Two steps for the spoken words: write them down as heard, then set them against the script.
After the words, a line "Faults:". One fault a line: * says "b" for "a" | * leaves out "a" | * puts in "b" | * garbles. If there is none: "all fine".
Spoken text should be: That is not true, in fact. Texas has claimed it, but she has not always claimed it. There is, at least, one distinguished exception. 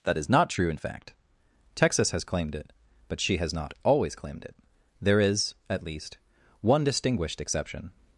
That is not true, in fact. Texas has claimed it, but she has not always claimed it. There is, at least, one distinguished exception.
Faults:
all fine